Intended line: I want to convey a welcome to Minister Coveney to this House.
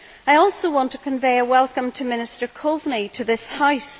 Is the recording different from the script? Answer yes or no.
yes